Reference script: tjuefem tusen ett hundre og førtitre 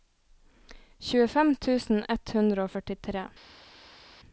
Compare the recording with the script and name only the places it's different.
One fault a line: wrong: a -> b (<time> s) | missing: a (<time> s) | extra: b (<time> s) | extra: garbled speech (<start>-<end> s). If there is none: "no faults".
no faults